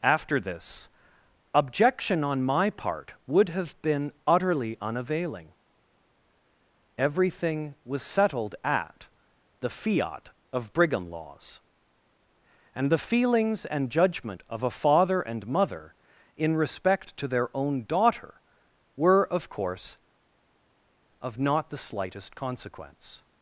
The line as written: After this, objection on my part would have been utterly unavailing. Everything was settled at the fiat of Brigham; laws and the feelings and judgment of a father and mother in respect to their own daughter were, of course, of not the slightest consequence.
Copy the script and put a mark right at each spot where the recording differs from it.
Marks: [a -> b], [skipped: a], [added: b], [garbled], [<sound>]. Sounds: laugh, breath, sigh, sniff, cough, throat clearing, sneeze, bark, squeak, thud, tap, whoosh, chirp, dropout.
After this, objection on my part would have been utterly unavailing. Everything was settled at the fiat of Brigham; laws and the feelings and judgment of a father and mother in respect to their own daughter were, of course, of not the slightest consequence.